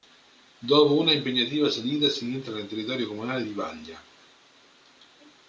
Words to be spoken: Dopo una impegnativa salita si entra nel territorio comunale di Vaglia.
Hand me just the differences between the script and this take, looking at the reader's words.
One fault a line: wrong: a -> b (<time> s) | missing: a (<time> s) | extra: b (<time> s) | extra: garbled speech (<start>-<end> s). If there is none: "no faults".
no faults